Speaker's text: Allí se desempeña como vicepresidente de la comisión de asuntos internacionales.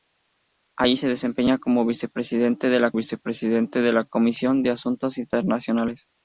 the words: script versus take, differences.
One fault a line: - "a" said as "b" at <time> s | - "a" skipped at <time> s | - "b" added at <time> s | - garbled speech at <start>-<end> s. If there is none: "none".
- "vicepresidente de la" added at 2.9 s